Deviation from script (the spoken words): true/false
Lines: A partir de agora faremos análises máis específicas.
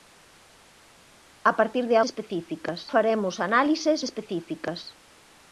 true